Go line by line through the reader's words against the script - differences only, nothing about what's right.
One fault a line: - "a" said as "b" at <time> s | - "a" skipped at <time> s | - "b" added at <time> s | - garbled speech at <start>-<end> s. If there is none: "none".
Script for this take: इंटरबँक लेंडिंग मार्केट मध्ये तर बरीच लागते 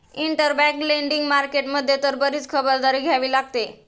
- "खबरदारी घ्यावी" added at 2.5 s